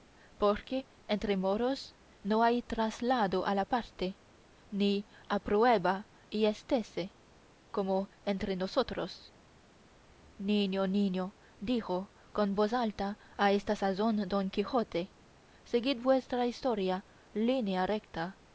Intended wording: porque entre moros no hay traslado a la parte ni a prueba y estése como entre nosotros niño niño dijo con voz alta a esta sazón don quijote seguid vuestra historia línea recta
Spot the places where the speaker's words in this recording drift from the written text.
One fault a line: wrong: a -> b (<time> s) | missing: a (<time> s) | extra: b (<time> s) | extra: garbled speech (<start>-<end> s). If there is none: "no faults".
no faults